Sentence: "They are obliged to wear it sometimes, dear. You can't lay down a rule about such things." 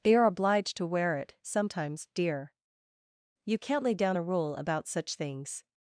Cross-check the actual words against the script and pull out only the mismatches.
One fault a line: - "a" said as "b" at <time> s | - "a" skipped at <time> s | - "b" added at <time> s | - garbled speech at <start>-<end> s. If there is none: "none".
none